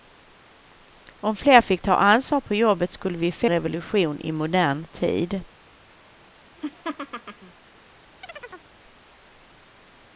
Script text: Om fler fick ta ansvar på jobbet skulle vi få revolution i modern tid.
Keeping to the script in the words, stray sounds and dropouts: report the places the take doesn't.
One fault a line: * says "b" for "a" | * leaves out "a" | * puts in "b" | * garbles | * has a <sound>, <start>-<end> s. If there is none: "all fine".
* has a laugh, 6.6-7.5 s
* has a chirp, 8.2-8.7 s